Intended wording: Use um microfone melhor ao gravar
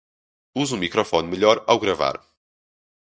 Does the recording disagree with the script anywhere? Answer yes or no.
no